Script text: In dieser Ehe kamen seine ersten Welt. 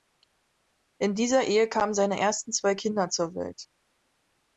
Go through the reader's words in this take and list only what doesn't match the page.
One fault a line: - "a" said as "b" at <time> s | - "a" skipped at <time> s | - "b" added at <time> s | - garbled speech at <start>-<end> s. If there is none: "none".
- "zwei Kinder zur" added at 2.5 s